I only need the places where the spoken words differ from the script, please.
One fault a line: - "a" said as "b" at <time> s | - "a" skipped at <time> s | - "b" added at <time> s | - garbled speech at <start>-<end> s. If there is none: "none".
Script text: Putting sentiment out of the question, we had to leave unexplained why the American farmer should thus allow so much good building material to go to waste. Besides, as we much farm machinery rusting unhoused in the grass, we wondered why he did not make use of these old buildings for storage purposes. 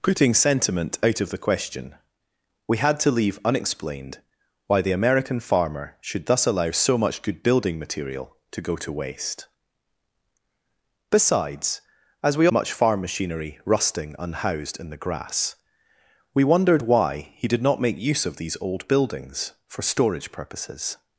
none